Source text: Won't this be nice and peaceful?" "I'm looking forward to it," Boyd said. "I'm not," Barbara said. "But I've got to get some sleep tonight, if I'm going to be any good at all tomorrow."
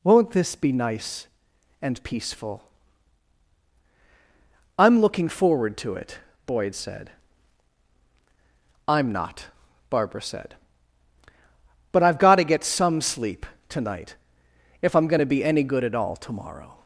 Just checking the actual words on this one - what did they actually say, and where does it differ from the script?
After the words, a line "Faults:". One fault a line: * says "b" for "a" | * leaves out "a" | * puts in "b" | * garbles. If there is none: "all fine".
Won't this be nice and peaceful?" "I'm looking forward to it," Boyd said. "I'm not," Barbara said. "But I've got to get some sleep tonight, if I'm going to be any good at all tomorrow."
Faults:
all fine